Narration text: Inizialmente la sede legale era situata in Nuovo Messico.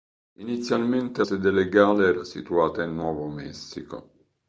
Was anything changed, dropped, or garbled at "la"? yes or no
yes